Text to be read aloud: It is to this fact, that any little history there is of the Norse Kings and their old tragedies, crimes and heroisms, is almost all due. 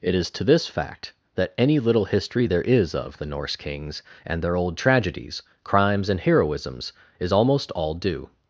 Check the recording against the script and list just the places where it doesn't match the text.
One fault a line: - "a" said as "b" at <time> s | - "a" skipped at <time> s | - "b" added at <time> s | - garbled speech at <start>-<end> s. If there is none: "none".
none